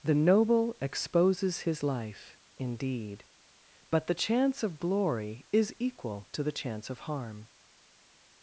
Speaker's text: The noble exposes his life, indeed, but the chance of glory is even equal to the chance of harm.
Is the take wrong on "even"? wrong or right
wrong